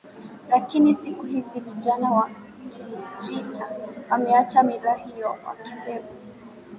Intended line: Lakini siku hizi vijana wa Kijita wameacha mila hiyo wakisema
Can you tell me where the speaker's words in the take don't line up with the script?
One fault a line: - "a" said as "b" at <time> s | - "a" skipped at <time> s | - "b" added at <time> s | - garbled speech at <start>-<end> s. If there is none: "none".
none